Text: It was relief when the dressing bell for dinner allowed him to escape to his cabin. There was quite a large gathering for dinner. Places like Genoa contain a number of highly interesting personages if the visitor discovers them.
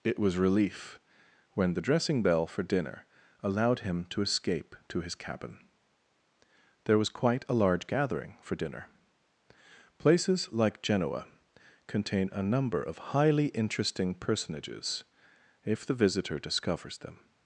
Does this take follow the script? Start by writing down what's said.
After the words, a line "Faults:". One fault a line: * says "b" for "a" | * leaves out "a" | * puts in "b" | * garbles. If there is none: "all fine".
It was relief when the dressing bell for dinner allowed him to escape to his cabin. There was quite a large gathering for dinner. Places like Genoa contain a number of highly interesting personages if the visitor discovers them.
Faults:
all fine